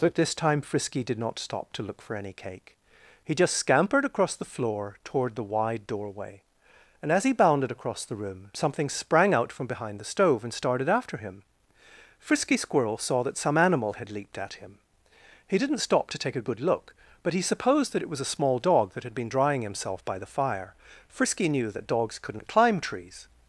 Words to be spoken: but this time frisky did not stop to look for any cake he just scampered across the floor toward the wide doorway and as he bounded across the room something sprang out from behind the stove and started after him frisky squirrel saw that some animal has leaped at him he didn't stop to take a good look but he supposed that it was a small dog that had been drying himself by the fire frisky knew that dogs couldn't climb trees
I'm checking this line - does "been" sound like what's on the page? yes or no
yes